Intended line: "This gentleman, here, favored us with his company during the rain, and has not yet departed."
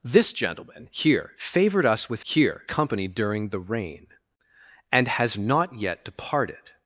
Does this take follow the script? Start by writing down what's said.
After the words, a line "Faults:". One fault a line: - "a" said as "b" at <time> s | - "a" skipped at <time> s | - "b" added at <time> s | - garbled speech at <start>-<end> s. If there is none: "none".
"This gentleman, here, favored us with here company during the rain, and has not yet departed."
Faults:
- "his" said as "here" at 2.2 s